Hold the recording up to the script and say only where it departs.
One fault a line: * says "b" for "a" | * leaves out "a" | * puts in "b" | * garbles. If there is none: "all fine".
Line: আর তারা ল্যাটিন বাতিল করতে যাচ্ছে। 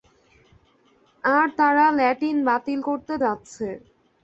all fine